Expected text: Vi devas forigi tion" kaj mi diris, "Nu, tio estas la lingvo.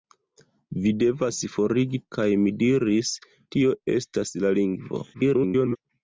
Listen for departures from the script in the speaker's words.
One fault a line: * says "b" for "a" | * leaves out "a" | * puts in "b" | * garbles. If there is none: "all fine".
* leaves out "tion"
* leaves out "Nu"
* garbles